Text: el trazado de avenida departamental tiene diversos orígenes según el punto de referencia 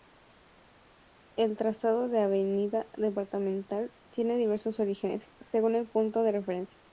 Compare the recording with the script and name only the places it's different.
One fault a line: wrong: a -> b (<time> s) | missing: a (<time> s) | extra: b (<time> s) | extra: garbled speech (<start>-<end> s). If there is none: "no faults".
no faults